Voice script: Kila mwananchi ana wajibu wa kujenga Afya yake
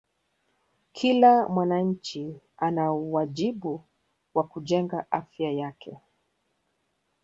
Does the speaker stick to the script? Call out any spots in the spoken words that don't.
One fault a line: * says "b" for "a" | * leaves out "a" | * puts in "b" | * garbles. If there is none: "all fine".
all fine